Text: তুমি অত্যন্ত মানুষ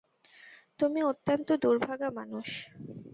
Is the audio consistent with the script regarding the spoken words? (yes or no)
no